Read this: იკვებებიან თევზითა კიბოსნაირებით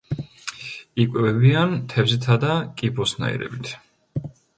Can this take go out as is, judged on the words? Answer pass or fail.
fail